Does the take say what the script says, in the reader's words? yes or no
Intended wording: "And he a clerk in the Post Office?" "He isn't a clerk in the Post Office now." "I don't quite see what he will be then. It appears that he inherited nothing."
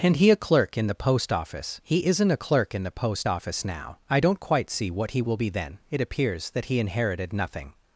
yes